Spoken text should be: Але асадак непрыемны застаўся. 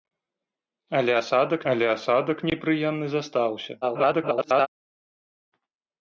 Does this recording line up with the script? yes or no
no